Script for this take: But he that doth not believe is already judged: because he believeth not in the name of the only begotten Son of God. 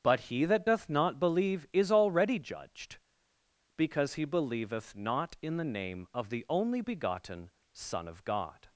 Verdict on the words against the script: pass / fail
pass